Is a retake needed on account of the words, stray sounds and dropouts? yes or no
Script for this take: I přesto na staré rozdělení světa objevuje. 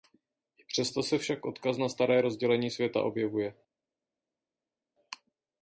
yes